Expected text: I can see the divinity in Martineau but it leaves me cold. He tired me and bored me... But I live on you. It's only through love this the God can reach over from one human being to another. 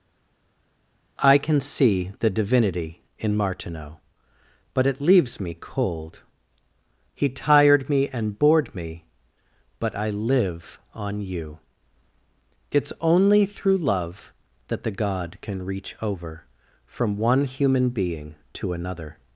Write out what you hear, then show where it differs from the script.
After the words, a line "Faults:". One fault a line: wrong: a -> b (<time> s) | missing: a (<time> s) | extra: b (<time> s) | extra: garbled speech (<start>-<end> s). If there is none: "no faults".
I can see the divinity in Martineau but it leaves me cold. He tired me and bored me... But I live on you. It's only through love that the God can reach over from one human being to another.
Faults:
wrong: this -> that (14.7 s)